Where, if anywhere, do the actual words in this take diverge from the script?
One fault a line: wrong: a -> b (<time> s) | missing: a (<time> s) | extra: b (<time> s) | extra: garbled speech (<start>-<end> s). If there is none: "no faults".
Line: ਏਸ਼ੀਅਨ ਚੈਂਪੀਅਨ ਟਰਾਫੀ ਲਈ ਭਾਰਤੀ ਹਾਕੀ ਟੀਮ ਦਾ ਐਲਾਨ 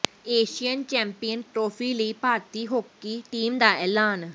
no faults